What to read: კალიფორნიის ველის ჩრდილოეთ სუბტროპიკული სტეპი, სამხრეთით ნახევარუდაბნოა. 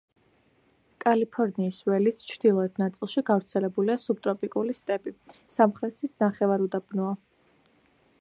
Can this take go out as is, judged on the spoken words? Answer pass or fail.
fail